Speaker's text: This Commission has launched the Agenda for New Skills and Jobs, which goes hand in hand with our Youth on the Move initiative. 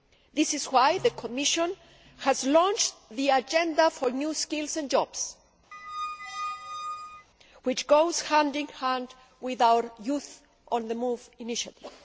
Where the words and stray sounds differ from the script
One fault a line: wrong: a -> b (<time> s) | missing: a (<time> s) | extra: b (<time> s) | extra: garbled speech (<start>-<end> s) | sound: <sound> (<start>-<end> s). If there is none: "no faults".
extra: is why the (0.6 s)
sound: squeak (5.7-7.3 s)